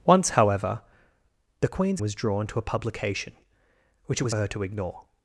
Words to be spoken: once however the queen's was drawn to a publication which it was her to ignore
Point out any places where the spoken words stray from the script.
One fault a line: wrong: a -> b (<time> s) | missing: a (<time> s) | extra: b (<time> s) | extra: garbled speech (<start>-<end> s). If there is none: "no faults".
no faults